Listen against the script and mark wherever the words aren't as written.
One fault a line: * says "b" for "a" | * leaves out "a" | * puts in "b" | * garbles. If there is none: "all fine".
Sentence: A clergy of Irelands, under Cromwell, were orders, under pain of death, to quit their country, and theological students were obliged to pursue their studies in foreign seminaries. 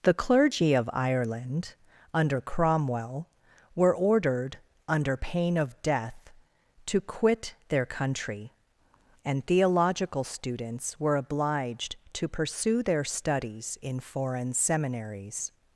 * says "The" for "A"
* says "Ireland" for "Irelands"
* says "ordered" for "orders"